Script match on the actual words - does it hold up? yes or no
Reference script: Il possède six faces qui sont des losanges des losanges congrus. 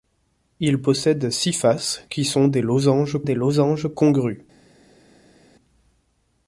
yes